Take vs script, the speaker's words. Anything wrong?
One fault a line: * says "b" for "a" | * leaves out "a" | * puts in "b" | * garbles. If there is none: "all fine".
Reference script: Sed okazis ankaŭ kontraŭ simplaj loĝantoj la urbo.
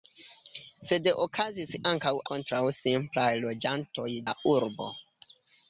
all fine